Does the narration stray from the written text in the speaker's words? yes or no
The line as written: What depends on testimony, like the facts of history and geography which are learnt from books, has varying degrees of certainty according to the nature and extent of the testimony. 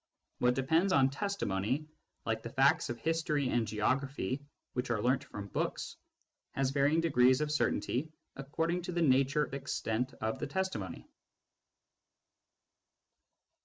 yes